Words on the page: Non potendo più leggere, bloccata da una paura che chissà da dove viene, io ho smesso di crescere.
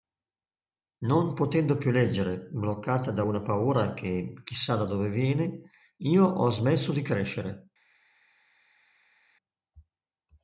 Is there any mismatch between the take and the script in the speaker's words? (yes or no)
no